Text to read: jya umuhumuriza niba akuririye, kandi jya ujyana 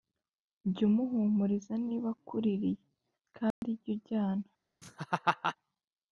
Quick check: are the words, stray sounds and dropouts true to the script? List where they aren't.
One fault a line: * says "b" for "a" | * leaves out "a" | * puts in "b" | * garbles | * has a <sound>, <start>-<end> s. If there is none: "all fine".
* has a dropout, 3.5-3.6 s
* has a laugh, 4.8-5.6 s